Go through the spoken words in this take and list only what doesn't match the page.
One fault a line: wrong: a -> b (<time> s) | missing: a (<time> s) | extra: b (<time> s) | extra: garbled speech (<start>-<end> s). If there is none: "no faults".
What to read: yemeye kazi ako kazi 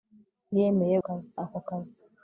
no faults